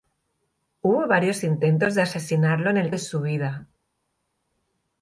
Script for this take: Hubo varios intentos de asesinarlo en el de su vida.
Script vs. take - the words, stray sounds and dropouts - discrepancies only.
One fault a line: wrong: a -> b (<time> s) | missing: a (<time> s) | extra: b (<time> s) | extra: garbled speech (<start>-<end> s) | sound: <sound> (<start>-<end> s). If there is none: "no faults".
no faults